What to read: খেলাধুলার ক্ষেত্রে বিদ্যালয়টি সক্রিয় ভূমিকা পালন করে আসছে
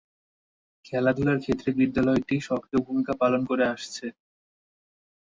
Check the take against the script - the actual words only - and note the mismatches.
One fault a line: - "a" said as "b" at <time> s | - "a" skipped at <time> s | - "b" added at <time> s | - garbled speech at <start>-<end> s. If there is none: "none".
none